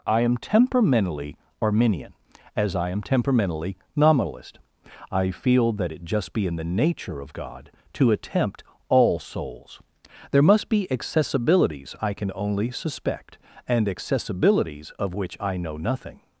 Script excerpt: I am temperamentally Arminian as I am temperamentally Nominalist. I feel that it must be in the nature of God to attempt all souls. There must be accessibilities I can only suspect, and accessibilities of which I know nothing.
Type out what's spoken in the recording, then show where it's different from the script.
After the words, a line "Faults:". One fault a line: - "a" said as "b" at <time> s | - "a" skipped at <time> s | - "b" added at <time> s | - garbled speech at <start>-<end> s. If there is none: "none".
I am temperamentally Arminian as I am temperamentally Nominalist. I feel that it just be in the nature of God to attempt all souls. There must be accessibilities I can only suspect, and accessibilities of which I know nothing.
Faults:
- "must" said as "just" at 6.0 s